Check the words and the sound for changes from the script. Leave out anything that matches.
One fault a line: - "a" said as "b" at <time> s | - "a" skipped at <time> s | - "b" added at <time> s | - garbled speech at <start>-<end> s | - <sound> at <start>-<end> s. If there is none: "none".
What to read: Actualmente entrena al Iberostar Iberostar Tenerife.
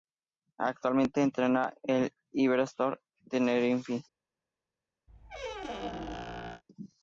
- "Iberostar" skipped at 3.0 s
- squeak at 5.1-6.6 s